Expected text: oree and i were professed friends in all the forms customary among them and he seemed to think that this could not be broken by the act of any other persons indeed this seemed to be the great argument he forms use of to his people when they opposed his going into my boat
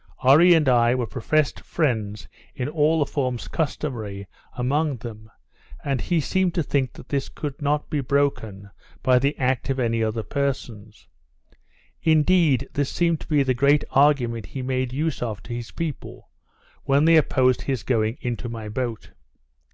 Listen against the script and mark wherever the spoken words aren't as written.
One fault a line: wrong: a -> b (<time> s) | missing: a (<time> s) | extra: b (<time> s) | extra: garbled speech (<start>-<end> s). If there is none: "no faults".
wrong: forms -> made (14.6 s)